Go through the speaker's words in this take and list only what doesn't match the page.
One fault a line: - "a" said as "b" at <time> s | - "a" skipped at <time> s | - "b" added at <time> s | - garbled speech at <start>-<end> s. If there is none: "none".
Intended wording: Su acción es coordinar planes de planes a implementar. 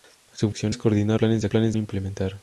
none